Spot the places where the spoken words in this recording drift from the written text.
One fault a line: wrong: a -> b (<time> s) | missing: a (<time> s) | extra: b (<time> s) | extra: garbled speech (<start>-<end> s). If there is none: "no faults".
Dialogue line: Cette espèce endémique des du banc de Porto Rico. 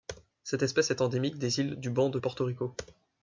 extra: est (0.9 s)
extra: îles (1.6 s)